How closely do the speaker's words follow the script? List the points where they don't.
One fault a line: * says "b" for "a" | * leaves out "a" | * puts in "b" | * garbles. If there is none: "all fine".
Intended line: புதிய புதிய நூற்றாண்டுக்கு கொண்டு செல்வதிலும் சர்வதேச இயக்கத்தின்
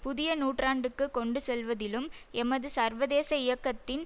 * leaves out "புதிய"
* puts in "எமது"